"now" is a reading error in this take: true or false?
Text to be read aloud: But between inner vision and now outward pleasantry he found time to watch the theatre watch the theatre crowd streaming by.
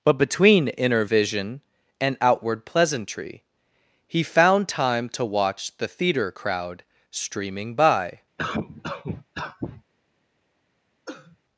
true